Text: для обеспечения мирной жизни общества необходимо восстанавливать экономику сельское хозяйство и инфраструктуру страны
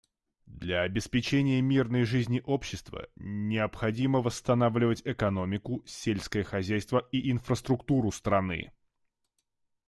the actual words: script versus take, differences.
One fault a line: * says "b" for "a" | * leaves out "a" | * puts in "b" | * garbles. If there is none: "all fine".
all fine